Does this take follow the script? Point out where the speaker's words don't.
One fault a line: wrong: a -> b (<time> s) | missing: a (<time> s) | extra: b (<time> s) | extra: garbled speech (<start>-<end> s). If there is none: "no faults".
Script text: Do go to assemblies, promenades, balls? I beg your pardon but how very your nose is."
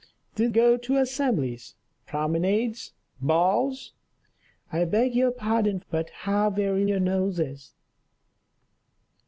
no faults